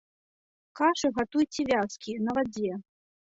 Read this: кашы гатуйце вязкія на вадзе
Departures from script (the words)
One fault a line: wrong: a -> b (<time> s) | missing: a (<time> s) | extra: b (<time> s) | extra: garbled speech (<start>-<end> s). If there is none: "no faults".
no faults